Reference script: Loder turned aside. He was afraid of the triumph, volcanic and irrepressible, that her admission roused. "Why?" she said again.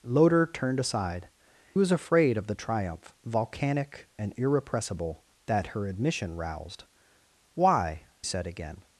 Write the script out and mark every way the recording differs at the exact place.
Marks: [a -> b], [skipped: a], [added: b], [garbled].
Loder turned aside. [skipped: He] was afraid of the triumph, volcanic and irrepressible, that her admission roused. "Why?" [skipped: she] said again.